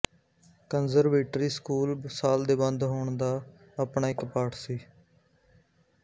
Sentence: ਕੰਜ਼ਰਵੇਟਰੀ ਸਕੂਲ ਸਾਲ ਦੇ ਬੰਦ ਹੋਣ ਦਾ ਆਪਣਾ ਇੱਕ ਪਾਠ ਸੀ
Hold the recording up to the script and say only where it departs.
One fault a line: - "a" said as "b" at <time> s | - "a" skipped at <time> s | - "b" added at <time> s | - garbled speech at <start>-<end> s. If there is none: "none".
none